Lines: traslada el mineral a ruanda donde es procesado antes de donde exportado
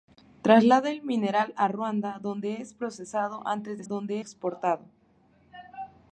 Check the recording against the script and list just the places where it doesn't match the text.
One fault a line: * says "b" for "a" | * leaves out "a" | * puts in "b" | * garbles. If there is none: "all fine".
all fine